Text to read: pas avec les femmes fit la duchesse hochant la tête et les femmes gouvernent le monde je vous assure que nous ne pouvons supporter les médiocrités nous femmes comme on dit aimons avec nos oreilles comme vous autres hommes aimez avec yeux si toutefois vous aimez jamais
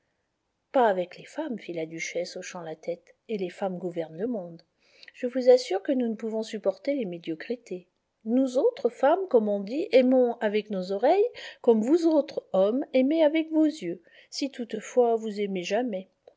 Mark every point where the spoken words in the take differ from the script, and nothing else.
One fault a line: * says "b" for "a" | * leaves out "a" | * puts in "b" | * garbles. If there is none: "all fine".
* puts in "autres"
* puts in "vos"